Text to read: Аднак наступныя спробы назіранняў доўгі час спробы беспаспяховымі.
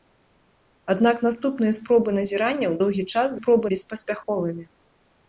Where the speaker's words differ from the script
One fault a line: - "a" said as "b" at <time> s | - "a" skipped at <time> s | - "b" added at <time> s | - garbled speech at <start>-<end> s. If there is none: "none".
none